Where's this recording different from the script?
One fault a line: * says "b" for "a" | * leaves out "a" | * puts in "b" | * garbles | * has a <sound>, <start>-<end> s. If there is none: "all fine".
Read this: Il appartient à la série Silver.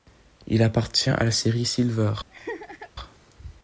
* has a laugh, 2.3-2.9 s